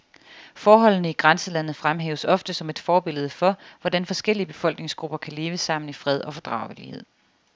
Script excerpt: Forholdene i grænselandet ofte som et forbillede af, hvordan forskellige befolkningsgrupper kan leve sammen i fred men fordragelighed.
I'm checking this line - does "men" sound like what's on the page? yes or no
no